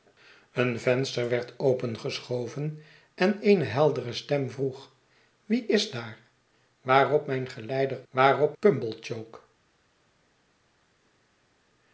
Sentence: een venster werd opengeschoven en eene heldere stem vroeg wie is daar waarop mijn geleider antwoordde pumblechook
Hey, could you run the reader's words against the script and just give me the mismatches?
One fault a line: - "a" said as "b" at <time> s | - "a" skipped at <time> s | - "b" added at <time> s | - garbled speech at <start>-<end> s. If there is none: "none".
- "antwoordde" said as "waarop" at 8.1 s